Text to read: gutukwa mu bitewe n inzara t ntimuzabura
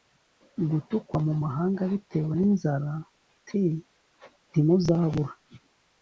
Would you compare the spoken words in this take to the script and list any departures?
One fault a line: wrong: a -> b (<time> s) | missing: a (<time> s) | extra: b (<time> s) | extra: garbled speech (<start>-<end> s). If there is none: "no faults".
extra: mahanga (1.4 s)